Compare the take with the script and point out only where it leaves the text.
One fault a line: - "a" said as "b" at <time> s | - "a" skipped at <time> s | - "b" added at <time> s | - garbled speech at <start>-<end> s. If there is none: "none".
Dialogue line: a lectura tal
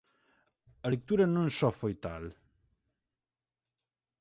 - "non só foi" added at 1.4 s